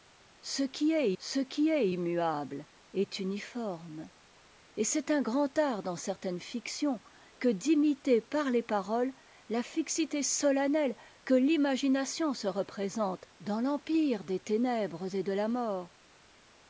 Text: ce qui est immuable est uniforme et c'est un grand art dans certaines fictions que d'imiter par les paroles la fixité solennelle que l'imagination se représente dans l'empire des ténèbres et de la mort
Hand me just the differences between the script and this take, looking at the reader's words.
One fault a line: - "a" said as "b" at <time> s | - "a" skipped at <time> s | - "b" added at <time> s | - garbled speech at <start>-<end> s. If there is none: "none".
- "ce qui est" added at 1.2 s